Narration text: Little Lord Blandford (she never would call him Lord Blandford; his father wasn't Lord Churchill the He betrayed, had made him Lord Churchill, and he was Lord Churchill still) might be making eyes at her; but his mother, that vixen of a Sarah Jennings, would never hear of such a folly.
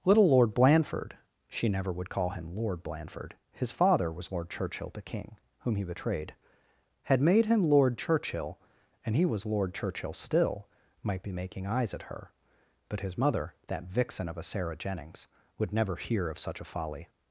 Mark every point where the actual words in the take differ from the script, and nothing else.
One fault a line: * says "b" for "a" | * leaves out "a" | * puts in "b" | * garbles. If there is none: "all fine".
* says "was" for "wasn't"
* puts in "King whom"